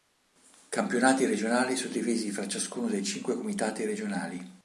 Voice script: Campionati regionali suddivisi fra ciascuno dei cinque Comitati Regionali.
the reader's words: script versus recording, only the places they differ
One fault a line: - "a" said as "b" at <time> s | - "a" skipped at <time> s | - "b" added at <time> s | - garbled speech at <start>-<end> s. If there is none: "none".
none